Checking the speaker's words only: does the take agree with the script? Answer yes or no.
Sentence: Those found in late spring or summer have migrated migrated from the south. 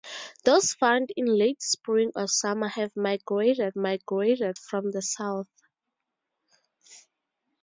yes